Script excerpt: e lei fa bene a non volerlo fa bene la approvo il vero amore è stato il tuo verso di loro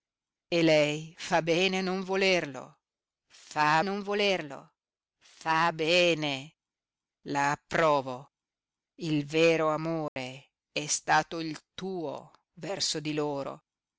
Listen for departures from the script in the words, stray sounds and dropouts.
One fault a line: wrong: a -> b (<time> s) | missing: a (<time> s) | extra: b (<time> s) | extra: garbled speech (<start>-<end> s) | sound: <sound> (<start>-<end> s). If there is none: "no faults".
extra: non volerlo fa (3.8 s)
sound: dropout (10.1-10.2 s)